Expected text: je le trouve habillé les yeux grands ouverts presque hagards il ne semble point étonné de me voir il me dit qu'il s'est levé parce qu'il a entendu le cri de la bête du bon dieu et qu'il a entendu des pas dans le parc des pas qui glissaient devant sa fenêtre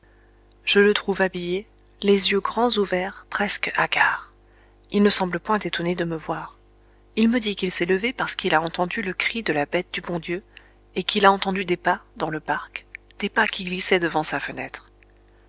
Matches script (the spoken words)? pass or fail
pass